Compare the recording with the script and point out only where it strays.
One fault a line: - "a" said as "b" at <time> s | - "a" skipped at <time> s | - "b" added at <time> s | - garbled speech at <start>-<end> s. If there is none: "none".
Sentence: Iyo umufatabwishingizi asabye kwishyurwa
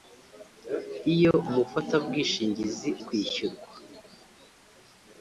- "asabye" skipped at 2.9 s